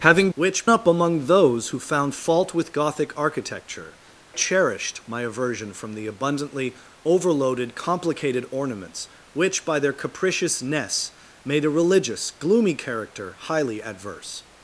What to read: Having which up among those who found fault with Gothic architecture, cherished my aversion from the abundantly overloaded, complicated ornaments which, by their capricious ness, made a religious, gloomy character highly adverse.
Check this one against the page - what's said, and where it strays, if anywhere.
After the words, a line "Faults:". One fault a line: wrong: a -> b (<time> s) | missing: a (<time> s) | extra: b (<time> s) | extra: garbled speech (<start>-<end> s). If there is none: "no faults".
Having which up among those who found fault with Gothic architecture, cherished my aversion from the abundantly overloaded, complicated ornaments which, by their capricious ness, made a religious, gloomy character highly adverse.
Faults:
no faults